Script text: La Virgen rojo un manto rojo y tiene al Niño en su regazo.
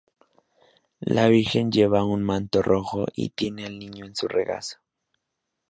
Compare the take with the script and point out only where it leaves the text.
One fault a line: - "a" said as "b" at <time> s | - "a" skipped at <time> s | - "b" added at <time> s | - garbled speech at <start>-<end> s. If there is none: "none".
- "rojo" said as "lleva" at 1.7 s